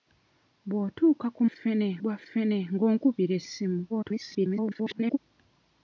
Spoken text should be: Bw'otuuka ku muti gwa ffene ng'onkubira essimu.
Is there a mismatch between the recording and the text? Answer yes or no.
yes